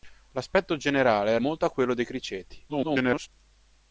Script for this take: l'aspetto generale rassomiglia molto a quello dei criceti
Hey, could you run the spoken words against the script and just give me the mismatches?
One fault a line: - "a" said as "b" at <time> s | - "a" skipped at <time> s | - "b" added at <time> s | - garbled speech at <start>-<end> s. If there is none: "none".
- "rassomiglia" skipped at 1.4 s
- garbled speech at 2.7-3.3 s